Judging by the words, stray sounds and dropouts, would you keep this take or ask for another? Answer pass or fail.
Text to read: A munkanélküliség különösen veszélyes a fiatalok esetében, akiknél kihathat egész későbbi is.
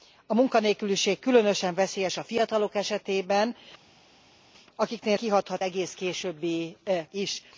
pass